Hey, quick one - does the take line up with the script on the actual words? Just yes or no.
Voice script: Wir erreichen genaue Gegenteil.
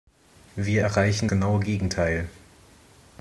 yes